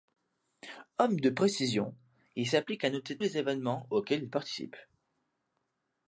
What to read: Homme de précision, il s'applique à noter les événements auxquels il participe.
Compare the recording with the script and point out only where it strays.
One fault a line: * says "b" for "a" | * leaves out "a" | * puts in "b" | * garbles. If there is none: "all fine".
all fine